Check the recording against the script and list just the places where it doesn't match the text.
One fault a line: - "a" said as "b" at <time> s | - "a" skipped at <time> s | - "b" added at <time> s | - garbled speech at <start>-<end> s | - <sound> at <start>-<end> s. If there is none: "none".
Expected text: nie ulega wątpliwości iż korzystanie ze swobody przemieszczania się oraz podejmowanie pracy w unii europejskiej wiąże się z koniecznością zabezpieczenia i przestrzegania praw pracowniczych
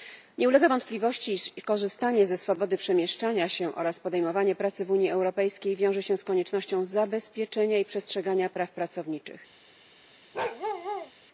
- bark at 10.3-11.1 s